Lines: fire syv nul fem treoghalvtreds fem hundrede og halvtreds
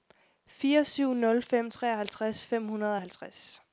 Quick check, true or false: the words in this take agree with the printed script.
true